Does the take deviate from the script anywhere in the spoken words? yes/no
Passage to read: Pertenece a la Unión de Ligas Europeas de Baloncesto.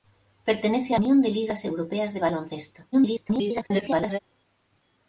yes